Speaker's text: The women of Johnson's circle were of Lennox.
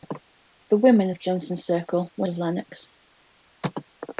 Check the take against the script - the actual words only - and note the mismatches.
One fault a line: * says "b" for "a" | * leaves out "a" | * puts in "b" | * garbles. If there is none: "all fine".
all fine